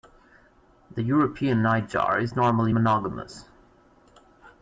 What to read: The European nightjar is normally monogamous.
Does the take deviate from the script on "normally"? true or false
false